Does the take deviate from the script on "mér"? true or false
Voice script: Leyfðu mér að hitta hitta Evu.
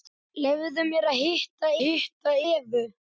false